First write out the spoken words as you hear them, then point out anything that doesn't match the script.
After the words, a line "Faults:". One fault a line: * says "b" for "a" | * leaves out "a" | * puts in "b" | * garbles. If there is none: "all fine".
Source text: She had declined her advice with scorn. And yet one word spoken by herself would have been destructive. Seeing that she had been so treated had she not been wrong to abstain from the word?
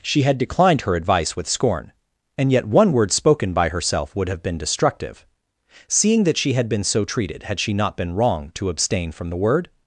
She had declined her advice with scorn. And yet one word spoken by herself would have been destructive. Seeing that she had been so treated had she not been wrong to abstain from the word?
Faults:
all fine